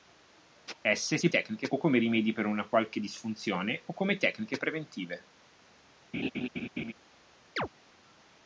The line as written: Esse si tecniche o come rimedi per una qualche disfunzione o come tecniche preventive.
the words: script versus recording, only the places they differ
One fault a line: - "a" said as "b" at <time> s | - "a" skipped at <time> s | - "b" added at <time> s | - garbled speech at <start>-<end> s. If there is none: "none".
none